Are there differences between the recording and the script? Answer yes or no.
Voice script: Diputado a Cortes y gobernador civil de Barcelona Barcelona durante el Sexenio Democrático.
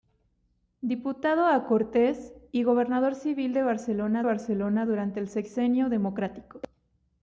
no